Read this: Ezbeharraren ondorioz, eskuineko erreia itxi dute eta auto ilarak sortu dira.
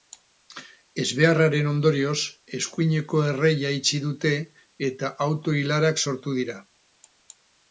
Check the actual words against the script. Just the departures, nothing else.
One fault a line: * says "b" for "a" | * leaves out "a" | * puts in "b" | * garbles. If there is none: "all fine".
all fine